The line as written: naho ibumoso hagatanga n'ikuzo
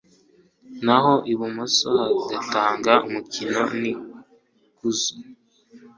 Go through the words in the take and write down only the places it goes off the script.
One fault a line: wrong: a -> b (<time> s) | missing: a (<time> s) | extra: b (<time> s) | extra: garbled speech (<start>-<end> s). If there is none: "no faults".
extra: umukiro (3.1 s)